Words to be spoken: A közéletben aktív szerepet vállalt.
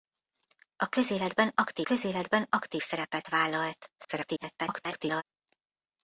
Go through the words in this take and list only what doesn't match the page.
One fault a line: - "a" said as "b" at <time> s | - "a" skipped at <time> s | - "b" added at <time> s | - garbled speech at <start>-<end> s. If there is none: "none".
- "közéletben aktív" added at 1.8 s
- garbled speech at 4.0-5.2 s